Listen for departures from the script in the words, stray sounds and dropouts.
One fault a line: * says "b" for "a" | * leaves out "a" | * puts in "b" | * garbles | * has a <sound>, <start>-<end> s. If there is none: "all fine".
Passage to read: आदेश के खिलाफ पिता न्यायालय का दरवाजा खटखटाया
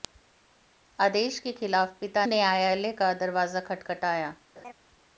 * has a laugh, 4.6-4.7 s